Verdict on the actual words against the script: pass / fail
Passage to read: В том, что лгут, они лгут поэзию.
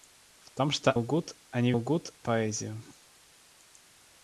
pass